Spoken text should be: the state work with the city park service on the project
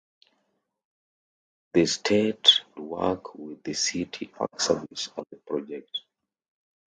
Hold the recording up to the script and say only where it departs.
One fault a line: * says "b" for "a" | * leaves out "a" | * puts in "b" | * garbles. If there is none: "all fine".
all fine